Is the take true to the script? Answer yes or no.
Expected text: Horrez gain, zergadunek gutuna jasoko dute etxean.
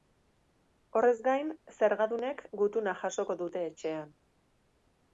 yes